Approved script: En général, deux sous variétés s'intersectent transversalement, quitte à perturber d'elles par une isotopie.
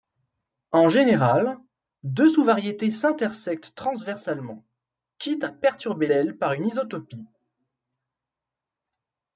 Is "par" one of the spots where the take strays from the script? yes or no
no